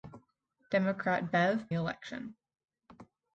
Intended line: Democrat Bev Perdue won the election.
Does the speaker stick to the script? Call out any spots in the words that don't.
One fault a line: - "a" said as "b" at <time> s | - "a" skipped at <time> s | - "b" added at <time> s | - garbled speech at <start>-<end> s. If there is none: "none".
- "Perdue won the" skipped at 1.7 s